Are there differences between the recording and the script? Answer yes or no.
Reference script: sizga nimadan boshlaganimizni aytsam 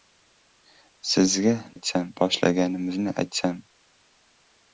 yes